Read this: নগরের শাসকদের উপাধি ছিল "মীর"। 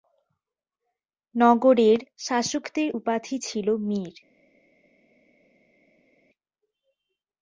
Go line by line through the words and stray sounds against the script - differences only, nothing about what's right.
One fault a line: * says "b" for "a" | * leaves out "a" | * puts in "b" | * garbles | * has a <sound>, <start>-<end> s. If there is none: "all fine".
all fine